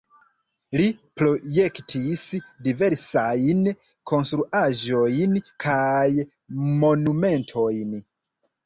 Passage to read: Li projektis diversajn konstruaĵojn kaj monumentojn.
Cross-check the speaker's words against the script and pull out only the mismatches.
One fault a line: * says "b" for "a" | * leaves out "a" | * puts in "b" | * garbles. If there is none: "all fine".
all fine